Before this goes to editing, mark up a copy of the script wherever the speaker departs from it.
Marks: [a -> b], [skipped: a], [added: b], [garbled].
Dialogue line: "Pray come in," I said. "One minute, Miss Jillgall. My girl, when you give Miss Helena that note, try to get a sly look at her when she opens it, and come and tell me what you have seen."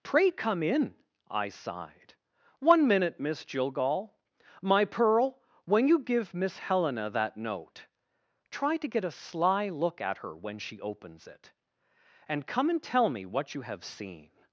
"Pray come in," I [said. -> sighed] "One minute, Miss Jillgall. My [girl, -> pearl] when you give Miss Helena that note, try to get a sly look at her when she opens it, and come and tell me what you have seen."